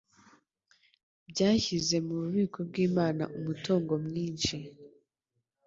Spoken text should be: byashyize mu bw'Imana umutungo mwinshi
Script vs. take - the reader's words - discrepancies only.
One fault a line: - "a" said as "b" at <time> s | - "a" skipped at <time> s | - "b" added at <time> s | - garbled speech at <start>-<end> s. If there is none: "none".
- "bubiko" added at 2.2 s